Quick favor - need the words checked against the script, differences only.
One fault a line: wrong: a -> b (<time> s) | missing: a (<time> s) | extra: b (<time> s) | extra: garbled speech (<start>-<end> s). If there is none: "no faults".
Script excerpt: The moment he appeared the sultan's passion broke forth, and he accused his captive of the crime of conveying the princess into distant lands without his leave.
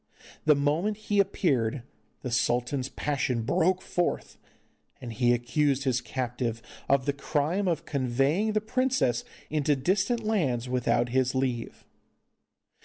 no faults